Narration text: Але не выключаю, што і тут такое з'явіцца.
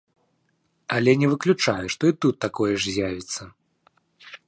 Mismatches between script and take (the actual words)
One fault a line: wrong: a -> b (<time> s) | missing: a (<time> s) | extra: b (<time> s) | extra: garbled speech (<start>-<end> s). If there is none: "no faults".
extra: ж (2.8 s)